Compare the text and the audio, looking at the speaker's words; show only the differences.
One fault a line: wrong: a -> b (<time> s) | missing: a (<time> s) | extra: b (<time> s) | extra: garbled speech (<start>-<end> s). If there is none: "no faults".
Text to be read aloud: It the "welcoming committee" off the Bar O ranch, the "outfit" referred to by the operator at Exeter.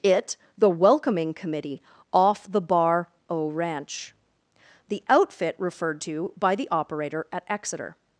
no faults